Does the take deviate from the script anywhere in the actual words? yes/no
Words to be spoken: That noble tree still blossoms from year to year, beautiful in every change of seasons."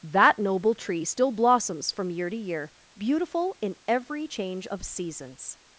no